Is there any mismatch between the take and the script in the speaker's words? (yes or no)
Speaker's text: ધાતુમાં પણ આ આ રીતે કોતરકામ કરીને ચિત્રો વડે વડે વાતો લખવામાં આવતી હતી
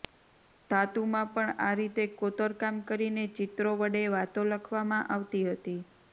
yes